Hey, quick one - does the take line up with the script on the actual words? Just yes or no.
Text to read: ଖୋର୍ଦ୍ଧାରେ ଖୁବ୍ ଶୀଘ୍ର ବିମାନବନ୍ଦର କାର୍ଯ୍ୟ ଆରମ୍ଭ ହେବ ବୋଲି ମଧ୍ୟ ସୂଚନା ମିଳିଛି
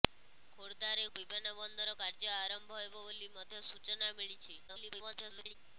no